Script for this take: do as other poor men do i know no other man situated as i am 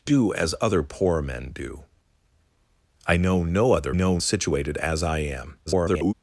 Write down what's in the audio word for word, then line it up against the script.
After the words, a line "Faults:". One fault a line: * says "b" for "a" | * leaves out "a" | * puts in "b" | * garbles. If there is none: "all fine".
do as other poor men do i know no other know situated as i am [garbled]
Faults:
* says "know" for "man"
* garbles